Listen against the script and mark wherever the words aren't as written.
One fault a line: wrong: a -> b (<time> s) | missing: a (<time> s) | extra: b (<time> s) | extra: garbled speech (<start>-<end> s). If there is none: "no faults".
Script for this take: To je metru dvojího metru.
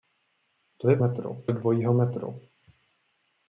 no faults